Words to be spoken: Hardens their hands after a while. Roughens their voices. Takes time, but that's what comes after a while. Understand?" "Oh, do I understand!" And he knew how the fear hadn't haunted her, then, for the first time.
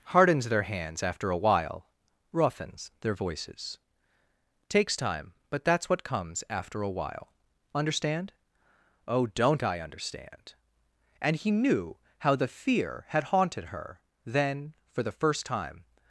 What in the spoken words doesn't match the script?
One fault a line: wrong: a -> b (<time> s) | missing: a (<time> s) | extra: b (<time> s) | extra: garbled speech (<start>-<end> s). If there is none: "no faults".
wrong: do -> don't (9.3 s)
wrong: hadn't -> had (13.1 s)